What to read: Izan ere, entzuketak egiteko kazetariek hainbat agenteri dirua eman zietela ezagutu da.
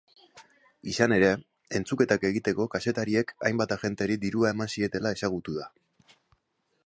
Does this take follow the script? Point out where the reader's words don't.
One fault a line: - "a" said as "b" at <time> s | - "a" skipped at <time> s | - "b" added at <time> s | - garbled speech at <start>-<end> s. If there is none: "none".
none